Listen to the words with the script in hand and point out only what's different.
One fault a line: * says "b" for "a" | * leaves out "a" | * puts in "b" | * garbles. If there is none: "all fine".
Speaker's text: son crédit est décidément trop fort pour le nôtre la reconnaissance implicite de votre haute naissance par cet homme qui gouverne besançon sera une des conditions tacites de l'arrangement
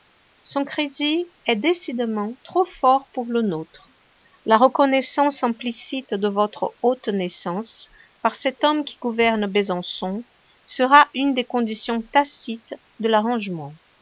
all fine